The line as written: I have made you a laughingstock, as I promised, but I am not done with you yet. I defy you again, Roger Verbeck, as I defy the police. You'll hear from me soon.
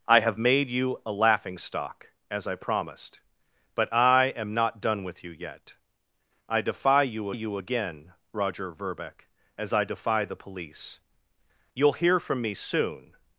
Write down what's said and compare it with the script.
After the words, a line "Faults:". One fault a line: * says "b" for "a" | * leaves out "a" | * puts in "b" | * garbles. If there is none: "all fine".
I have made you a laughingstock, as I promised, but I am not done with you yet. I defy you you again, Roger Verbeck, as I defy the police. You'll hear from me soon.
Faults:
* puts in "you"